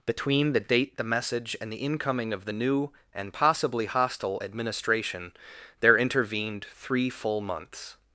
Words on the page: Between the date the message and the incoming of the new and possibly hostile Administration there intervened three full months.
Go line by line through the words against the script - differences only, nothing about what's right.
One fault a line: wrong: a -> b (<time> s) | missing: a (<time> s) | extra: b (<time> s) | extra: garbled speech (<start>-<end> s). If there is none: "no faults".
no faults